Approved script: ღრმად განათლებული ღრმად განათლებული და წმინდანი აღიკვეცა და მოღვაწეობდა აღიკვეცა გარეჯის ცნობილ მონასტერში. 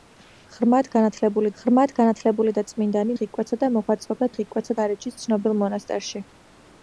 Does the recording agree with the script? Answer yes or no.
yes